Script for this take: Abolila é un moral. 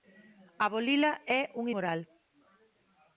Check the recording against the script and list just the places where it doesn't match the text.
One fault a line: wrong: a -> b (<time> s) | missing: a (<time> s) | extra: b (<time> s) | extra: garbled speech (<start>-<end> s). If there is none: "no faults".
no faults